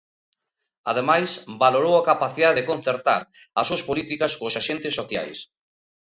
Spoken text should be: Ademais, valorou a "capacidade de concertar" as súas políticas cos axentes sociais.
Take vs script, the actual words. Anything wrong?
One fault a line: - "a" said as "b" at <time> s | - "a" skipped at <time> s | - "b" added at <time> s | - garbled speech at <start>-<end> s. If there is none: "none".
none